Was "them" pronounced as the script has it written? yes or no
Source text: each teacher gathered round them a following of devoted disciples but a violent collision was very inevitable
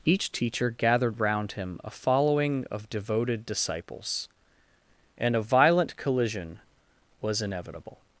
no